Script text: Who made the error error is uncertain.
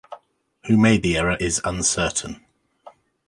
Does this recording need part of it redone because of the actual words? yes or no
yes